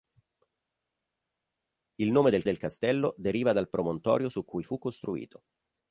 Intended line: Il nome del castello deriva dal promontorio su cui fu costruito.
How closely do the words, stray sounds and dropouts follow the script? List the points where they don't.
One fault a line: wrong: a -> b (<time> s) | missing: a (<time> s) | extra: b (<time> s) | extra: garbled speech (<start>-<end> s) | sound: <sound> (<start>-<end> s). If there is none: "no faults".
extra: del (2.4 s)